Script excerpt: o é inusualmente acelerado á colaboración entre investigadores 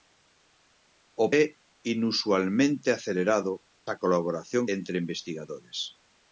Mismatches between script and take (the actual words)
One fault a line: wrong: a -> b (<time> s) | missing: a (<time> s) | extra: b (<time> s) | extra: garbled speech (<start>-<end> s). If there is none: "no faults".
no faults